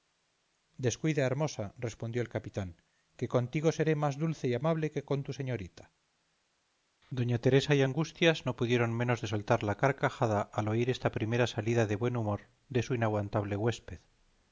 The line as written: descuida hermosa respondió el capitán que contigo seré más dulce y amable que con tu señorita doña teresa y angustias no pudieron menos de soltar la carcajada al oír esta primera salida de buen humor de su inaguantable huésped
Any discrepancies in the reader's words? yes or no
no